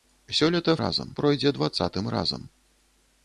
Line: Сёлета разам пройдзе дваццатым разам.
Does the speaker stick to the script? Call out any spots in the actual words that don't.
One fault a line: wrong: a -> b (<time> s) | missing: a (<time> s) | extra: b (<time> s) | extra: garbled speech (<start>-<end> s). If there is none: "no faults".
no faults